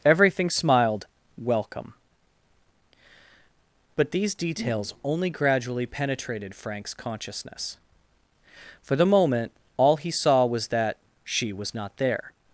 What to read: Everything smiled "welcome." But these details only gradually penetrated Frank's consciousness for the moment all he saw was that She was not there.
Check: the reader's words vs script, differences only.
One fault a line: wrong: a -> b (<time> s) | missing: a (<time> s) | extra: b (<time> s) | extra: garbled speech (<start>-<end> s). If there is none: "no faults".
no faults